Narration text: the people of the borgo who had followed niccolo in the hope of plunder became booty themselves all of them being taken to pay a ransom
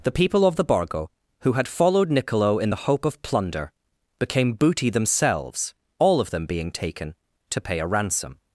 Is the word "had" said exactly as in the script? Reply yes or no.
yes